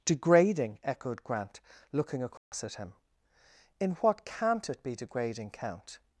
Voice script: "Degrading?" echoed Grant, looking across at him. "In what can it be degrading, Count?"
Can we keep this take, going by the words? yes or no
no